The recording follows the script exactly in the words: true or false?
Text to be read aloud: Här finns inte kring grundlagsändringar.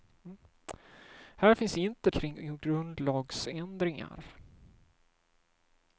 true